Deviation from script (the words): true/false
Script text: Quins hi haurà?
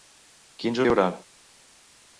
false